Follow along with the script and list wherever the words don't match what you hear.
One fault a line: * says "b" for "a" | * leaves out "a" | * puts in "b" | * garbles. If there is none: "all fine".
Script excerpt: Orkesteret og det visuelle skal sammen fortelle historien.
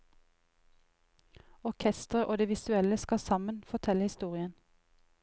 all fine